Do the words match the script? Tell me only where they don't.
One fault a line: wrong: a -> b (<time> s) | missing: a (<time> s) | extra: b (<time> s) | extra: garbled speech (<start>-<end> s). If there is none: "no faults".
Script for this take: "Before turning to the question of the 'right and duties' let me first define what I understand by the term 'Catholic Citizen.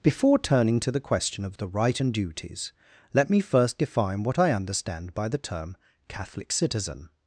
no faults